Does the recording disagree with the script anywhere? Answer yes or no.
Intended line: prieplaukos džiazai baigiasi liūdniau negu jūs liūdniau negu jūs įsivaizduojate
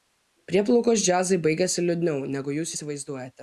yes